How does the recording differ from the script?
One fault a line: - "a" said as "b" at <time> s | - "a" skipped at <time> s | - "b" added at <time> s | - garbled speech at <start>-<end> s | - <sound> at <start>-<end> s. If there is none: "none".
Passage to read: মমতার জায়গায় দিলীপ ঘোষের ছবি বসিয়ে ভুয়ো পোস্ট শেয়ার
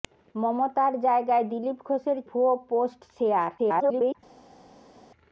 - "ছবি বসিয়ে" skipped at 2.2 s
- garbled speech at 3.6-4.2 s